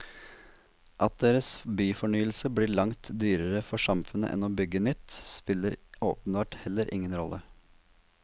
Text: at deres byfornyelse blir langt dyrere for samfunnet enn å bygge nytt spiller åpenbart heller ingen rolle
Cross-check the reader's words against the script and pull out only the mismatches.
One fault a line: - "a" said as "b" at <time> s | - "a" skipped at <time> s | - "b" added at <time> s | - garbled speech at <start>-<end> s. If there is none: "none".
none